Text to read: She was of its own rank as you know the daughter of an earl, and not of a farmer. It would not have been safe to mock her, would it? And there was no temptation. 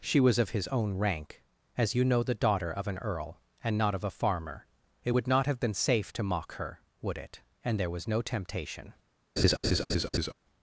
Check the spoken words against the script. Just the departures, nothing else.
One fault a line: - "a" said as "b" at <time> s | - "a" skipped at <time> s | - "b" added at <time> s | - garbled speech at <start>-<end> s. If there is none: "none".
- "its" said as "his" at 0.5 s